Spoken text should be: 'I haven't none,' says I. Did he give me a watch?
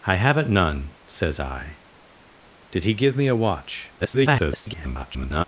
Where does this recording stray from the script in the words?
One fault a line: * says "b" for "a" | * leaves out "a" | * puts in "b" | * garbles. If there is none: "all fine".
* garbles